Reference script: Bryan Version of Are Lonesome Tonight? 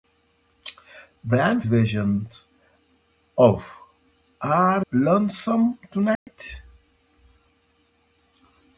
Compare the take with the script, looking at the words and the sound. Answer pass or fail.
fail